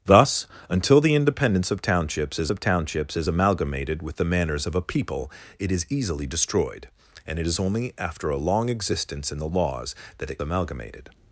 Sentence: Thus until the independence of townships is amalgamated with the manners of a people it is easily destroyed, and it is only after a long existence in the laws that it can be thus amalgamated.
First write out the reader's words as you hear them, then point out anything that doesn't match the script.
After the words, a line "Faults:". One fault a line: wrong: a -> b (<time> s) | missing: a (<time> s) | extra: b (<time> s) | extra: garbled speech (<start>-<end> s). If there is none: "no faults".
Thus until the independence of townships is of townships is amalgamated with the manners of a people it is easily destroyed, and it is only after a long existence in the laws that it amalgamated.
Faults:
extra: of townships is (2.5 s)
missing: can be thus (10.4 s)